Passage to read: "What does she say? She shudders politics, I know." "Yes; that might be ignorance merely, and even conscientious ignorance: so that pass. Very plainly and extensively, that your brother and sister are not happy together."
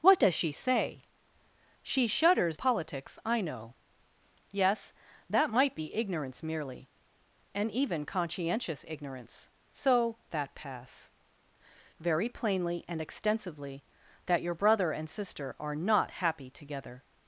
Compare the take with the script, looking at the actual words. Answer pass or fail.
pass